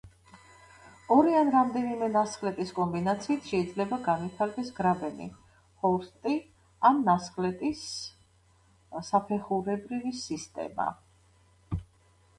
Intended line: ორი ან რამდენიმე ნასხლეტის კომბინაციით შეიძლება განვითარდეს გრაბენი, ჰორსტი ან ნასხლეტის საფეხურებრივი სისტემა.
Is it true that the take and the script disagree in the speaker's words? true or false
false